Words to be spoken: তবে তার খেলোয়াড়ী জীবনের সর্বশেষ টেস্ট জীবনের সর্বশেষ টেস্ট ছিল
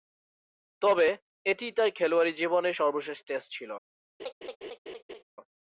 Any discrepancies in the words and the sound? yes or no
yes